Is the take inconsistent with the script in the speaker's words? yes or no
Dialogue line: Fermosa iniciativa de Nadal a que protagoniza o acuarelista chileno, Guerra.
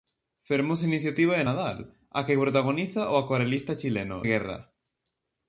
no